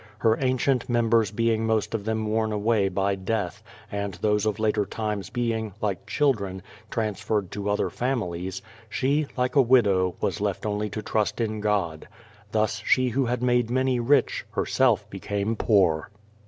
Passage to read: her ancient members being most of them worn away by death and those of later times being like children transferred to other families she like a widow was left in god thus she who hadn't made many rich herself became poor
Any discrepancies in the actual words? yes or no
yes